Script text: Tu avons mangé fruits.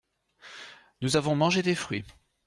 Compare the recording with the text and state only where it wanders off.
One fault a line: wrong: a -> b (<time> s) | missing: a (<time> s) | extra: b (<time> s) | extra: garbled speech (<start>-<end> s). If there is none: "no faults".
wrong: Tu -> Nous (1.0 s)
extra: des (1.6 s)